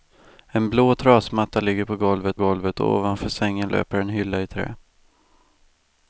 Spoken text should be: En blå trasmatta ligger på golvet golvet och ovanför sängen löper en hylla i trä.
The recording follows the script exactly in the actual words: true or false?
true